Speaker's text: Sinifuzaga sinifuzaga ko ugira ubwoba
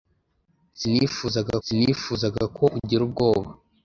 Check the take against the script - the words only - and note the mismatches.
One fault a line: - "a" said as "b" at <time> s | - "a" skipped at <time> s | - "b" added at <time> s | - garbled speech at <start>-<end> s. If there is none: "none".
none